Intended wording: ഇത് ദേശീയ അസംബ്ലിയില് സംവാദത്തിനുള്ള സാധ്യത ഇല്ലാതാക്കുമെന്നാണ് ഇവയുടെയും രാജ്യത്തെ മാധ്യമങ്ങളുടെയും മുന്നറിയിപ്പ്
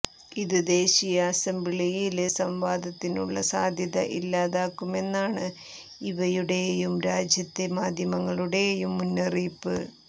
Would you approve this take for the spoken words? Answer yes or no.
yes